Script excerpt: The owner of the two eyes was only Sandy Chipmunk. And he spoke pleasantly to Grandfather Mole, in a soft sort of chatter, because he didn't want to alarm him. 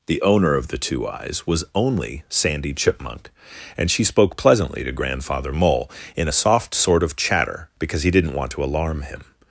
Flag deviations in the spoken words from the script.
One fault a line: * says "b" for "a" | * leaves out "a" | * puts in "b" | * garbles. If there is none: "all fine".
* says "she" for "he"